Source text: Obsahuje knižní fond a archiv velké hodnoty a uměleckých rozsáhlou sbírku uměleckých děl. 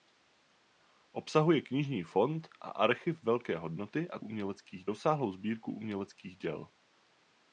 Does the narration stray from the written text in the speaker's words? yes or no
no